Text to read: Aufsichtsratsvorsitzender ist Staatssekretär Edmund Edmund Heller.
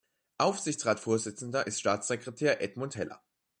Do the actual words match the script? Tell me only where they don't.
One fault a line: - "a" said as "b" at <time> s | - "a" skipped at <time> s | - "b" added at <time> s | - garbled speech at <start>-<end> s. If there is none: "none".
- "Edmund" skipped at 3.0 s